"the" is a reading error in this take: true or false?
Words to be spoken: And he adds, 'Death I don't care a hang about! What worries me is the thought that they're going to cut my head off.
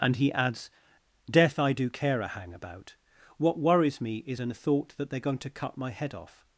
true